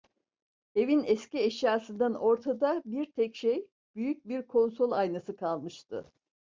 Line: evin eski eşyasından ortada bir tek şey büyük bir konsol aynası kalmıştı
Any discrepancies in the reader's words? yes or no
no